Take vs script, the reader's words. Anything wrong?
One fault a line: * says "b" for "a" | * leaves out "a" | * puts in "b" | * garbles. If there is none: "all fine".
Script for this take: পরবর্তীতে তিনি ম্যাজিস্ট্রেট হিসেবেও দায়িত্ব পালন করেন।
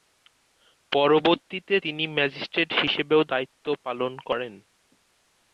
all fine